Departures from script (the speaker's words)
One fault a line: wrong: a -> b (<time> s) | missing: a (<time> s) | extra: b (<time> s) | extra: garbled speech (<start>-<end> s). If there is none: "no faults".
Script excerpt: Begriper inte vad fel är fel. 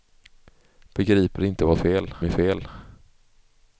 no faults